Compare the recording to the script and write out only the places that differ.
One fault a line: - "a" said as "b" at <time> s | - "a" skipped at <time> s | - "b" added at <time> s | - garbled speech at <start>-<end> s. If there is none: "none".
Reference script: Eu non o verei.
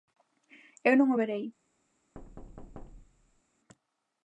none